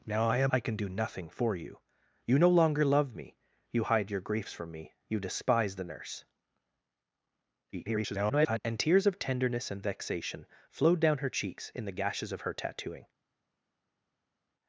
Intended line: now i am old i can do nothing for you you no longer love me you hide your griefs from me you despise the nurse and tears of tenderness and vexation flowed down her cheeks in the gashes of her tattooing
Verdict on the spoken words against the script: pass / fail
fail